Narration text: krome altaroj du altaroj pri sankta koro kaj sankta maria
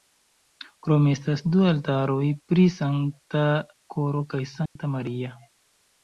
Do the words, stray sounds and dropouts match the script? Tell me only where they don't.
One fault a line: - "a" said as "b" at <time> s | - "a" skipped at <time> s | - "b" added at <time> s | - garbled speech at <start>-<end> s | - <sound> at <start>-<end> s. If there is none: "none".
- "altaroj" said as "estas" at 1.1 s
- dropout at 4.7-4.8 s